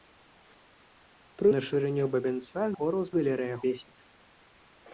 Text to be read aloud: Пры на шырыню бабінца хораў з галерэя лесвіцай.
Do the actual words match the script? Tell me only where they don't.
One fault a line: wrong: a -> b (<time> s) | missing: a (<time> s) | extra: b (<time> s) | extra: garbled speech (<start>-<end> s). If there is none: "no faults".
no faults